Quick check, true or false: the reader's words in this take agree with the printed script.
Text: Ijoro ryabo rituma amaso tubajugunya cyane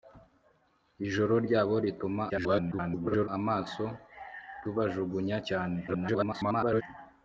false